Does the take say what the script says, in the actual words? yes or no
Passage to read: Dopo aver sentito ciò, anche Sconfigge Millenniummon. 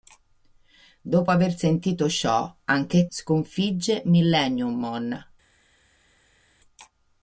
yes